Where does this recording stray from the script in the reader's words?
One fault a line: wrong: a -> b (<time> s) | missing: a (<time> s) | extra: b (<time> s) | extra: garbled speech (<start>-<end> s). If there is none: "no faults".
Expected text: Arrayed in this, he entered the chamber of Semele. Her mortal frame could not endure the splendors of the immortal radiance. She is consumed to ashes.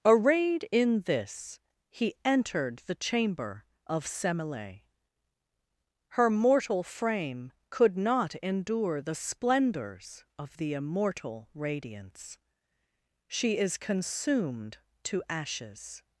no faults